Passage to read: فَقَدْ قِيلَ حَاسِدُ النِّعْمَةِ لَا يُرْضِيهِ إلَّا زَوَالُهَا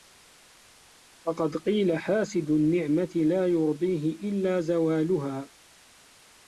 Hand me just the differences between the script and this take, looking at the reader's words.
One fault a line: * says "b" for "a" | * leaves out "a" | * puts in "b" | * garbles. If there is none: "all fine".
all fine